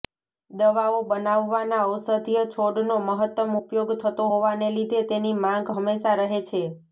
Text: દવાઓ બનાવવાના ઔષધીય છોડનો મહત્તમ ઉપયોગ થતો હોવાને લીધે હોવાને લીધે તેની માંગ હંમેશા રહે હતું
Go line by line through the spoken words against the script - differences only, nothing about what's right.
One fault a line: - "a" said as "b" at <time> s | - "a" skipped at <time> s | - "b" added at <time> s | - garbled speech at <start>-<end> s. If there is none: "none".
- "હોવાને લીધે" skipped at 5.0 s
- "હતું" said as "છે" at 6.5 s